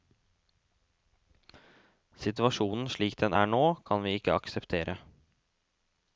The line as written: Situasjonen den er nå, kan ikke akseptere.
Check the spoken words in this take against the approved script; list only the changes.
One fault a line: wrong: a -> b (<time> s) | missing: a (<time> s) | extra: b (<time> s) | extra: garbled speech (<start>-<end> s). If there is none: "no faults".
extra: slik (2.9 s)
extra: vi (4.1 s)